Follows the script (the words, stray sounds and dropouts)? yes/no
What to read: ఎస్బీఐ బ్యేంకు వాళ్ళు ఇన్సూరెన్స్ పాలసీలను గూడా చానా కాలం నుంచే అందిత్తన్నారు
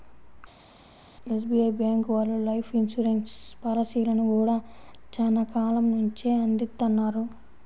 no